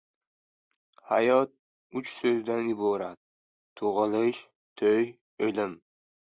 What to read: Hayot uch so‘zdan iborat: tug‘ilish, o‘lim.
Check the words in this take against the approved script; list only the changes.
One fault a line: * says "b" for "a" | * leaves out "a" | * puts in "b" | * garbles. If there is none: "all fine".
* puts in "to‘y"